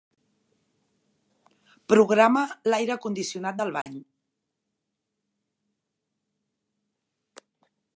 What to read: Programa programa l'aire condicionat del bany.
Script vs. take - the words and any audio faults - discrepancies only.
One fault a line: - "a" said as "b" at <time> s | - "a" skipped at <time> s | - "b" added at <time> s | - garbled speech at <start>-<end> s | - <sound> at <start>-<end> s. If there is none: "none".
- "programa" skipped at 2.4 s
- dropout at 3.8-3.9 s